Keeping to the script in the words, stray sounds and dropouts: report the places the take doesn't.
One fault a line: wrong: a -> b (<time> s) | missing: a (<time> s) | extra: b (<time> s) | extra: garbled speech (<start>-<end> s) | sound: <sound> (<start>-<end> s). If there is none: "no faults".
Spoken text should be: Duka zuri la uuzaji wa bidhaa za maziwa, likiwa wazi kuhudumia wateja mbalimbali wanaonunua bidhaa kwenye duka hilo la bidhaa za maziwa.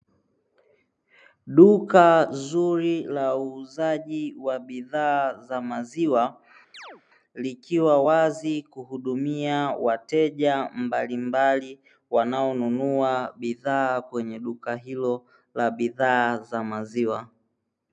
sound: chirp (6.7-7.0 s)